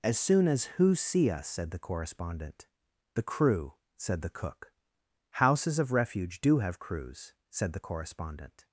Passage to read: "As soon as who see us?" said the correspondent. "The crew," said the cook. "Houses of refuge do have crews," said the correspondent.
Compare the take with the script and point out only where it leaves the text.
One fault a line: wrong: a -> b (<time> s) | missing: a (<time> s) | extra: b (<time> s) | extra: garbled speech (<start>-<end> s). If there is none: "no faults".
no faults